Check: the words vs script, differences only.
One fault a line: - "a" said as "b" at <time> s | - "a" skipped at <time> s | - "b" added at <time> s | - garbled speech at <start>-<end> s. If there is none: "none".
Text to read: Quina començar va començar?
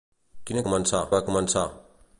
none